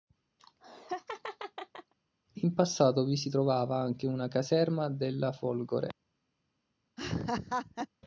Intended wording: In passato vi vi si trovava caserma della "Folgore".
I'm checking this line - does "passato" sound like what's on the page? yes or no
yes